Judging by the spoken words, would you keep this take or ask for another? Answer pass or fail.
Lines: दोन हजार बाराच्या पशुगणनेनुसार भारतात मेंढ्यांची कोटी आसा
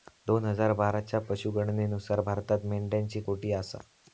pass